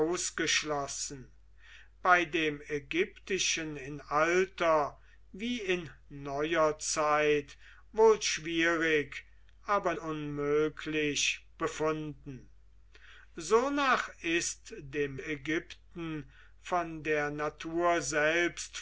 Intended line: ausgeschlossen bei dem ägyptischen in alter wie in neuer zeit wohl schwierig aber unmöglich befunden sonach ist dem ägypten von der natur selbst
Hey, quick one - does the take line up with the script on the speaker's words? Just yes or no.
yes